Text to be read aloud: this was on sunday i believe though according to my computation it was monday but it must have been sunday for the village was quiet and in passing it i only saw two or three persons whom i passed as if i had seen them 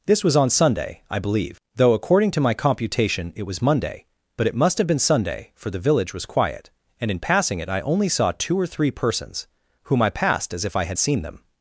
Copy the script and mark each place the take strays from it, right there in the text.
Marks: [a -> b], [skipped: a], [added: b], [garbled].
this was on sunday i believe though according to my computation it was monday but it must have been sunday for the village was quiet and in passing it i only saw two or three persons whom i passed as if i had seen them